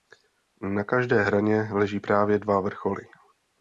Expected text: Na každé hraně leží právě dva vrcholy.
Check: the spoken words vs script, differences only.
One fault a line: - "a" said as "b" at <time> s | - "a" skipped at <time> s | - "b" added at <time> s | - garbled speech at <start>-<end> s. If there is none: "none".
none